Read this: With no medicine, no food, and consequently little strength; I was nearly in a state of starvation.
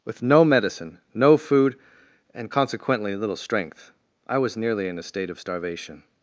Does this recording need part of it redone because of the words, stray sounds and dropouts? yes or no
no